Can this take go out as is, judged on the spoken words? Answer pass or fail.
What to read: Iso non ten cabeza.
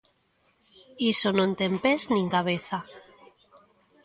fail